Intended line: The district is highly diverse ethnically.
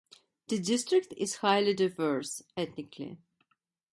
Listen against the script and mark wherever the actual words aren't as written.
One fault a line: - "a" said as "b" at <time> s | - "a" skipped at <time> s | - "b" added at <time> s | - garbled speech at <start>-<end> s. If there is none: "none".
none